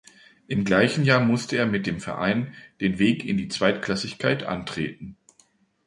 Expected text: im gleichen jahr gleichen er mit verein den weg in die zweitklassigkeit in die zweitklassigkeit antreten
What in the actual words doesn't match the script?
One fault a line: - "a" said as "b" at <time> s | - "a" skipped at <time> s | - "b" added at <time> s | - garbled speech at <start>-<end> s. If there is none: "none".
- "gleichen" said as "musste" at 1.2 s
- "dem" added at 1.9 s
- "in die zweitklassigkeit" skipped at 4.4 s